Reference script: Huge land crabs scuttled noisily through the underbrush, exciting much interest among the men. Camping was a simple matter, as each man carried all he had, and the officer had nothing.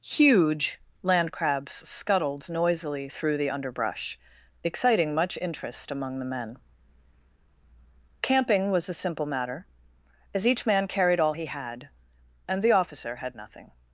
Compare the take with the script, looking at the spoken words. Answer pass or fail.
pass